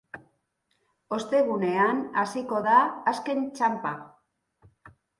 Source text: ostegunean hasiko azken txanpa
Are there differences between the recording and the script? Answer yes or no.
yes